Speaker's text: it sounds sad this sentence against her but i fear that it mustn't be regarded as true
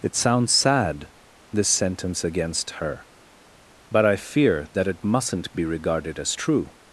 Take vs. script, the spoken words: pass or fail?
pass